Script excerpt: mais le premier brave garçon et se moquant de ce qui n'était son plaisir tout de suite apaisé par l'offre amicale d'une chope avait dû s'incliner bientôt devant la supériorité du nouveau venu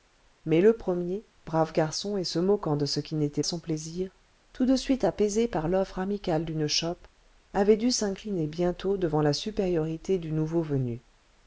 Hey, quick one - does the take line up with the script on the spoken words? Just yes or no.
yes